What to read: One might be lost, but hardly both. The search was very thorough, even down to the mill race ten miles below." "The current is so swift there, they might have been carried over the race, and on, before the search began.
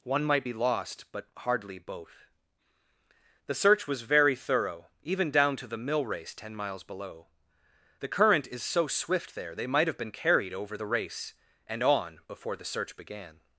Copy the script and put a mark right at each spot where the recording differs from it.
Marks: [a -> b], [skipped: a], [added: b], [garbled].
One might be lost, but hardly both. The search was very thorough, even down to the mill race ten miles below." "The current is so swift there, they might have been carried over the race, and on, before the search began.